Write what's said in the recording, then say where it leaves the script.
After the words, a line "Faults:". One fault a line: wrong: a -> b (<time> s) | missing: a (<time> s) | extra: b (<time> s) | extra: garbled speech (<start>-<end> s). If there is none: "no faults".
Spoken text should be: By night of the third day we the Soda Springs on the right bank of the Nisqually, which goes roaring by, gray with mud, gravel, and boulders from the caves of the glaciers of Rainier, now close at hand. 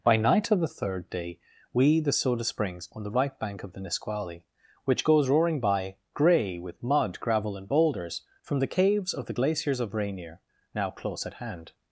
By night of the third day we the Soda Springs on the right bank of the Nisqually, which goes roaring by, gray with mud, gravel, and boulders from the caves of the glaciers of Rainier, now close at hand.
Faults:
no faults